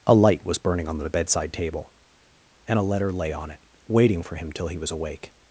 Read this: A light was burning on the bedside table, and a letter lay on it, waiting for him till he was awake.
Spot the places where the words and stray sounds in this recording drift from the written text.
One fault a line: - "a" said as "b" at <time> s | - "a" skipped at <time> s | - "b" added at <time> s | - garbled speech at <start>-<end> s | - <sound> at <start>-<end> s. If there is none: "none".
none